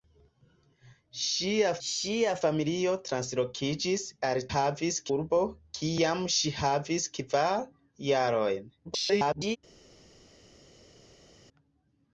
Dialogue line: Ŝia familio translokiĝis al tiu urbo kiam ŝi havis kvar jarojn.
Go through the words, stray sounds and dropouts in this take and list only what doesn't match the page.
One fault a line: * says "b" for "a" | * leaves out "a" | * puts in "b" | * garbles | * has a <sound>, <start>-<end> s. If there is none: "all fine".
* puts in "ŝia"
* says "havis" for "tiu"
* garbles